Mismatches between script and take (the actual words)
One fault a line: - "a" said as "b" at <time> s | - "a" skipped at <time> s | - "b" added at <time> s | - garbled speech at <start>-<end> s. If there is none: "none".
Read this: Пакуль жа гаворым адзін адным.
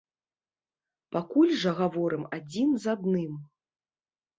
- "з" added at 2.8 s